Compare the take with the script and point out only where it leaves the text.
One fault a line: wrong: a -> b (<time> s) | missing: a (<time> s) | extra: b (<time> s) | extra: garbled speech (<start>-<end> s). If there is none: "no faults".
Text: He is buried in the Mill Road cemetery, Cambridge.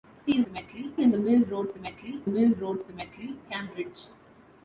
wrong: buried -> cemetery (0.4 s)
extra: Mill Road cemetery (2.3 s)